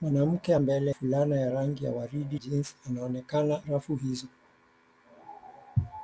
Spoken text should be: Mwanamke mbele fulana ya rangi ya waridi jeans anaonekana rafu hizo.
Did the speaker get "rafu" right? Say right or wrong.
right